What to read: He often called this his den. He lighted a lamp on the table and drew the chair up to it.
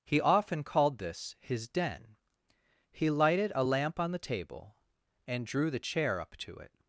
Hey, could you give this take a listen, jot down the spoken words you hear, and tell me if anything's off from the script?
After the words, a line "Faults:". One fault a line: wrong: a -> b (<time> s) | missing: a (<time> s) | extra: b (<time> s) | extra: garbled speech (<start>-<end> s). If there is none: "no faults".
He often called this his den. He lighted a lamp on the table and drew the chair up to it.
Faults:
no faults